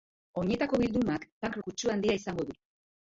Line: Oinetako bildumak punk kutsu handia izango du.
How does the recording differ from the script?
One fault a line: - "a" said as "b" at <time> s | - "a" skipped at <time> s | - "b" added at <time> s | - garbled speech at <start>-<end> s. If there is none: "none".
none